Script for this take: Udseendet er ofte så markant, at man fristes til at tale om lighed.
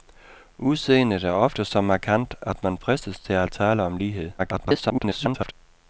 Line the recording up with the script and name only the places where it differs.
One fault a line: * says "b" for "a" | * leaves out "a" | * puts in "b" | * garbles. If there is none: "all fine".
* garbles